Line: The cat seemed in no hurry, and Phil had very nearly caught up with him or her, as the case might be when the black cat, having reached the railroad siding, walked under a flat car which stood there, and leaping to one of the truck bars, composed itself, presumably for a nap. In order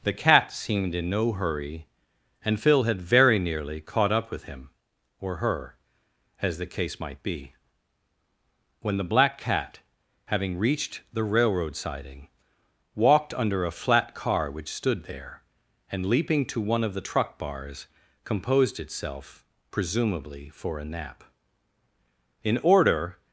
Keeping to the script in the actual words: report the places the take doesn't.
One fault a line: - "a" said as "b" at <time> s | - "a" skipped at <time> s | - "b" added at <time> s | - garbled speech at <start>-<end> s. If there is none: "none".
none